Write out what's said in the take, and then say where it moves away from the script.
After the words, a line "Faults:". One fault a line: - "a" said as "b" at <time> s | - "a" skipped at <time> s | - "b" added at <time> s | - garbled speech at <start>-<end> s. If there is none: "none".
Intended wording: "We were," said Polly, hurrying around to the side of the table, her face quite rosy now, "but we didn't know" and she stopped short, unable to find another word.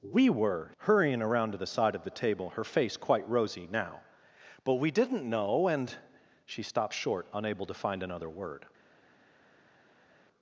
"We were," hurrying around to the side of the table, her face quite rosy now, "but we didn't know" and she stopped short, unable to find another word.
Faults:
- "said Polly" skipped at 0.7 s